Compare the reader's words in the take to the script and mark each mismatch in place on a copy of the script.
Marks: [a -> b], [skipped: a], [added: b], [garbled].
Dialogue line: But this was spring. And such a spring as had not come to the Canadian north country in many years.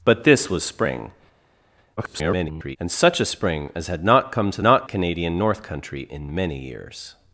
But this was spring. [garbled] And such a spring as had not come to [the -> not] Canadian north country in many years.